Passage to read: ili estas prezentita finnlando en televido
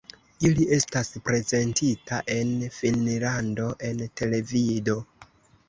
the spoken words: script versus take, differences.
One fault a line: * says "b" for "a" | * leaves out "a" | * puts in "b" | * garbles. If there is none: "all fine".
* puts in "en"